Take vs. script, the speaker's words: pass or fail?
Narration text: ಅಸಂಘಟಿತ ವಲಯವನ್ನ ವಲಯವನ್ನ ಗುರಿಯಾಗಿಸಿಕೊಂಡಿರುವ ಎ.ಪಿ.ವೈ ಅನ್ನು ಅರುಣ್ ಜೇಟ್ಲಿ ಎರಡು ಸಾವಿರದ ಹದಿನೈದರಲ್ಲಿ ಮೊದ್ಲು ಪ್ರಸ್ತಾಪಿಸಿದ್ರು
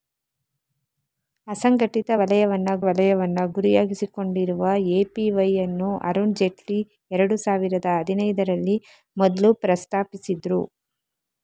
pass